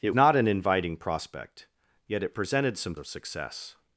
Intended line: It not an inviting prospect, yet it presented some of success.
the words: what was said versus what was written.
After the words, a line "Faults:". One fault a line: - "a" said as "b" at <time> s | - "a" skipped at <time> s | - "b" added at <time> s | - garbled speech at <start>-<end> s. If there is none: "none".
It not an inviting prospect, yet it presented some of success.
Faults:
none